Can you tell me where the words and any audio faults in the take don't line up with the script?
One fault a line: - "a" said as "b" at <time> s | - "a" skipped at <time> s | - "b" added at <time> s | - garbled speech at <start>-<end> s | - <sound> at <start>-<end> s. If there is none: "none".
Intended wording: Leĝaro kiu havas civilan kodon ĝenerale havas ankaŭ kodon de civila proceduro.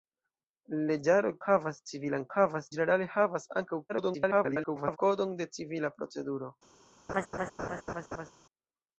- "kiu" skipped at 1.3 s
- "kodon" said as "havas" at 2.4 s
- garbled speech at 3.9-5.0 s
- laugh at 7.1-8.3 s